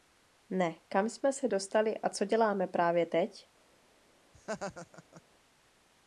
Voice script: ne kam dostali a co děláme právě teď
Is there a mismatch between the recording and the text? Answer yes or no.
yes